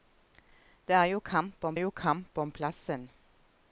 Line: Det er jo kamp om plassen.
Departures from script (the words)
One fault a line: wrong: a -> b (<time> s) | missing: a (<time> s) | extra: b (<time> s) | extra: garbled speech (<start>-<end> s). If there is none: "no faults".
extra: jo kamp om (1.7 s)